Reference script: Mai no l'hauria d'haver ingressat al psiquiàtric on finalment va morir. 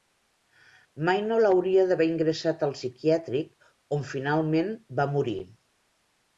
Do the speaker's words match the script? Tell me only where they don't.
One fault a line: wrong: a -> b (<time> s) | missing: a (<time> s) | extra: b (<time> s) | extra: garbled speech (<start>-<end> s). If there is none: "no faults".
no faults